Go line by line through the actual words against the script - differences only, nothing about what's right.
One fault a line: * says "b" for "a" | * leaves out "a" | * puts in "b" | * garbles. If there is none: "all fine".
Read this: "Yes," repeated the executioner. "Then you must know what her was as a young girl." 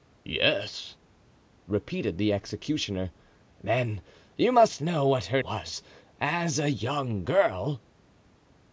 all fine